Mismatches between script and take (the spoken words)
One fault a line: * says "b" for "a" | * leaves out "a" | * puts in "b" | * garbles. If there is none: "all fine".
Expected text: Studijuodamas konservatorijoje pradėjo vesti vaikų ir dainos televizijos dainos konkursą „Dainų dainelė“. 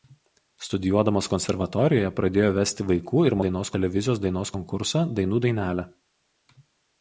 all fine